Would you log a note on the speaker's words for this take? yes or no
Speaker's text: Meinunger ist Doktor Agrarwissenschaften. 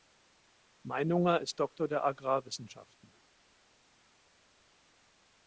yes